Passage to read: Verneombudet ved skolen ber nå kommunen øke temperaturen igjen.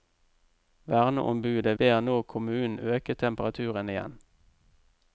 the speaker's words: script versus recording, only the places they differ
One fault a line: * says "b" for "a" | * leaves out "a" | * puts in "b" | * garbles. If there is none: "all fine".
* leaves out "ved skolen"